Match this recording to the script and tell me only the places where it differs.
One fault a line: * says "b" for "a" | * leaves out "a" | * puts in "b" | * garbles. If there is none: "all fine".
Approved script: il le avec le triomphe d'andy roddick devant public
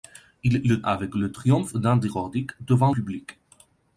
all fine